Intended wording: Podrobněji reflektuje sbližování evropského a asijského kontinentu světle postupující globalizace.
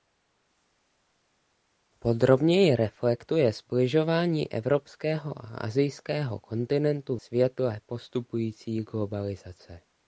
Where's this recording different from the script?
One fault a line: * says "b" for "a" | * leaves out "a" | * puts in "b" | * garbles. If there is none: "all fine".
all fine